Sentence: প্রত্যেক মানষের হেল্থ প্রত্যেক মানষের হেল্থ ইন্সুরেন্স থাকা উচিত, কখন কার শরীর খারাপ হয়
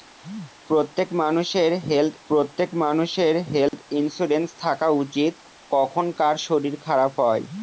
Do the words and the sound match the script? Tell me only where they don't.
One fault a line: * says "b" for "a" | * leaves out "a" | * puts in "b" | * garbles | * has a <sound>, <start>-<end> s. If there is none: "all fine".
* has a dropout, 3.7-3.7 s